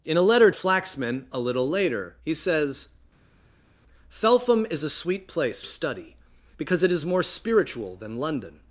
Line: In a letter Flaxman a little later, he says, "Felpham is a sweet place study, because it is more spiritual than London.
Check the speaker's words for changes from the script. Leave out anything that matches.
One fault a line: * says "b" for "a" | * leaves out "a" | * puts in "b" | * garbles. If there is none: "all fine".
all fine